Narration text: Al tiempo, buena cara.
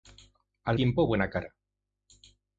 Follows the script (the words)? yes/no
yes